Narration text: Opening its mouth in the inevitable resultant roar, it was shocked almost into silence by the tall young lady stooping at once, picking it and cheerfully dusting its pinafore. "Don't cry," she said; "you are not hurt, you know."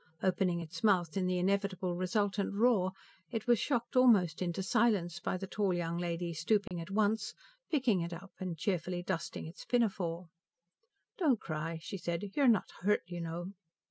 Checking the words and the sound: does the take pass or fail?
fail